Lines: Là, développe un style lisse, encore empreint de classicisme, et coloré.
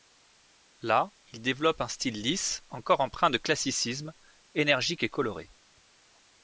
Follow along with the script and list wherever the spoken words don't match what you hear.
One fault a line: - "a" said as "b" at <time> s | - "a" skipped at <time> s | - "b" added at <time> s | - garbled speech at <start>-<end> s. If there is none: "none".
- "il" added at 1.3 s
- "énergique" added at 4.5 s